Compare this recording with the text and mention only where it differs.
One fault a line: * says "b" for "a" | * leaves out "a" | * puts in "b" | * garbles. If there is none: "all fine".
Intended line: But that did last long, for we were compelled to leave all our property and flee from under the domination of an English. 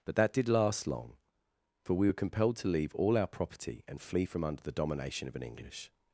all fine